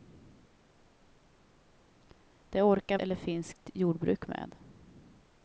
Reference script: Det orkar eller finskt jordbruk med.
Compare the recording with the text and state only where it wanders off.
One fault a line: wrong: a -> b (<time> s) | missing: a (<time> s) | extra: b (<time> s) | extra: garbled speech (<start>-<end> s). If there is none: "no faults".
no faults